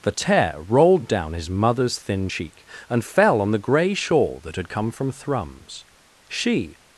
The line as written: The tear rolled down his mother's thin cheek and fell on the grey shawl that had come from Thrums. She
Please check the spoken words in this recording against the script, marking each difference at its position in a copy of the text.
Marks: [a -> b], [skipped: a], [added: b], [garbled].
The tear rolled down his mother's thin cheek and fell on the grey shawl that had come from Thrums. She